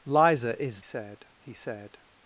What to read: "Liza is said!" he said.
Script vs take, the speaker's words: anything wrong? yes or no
no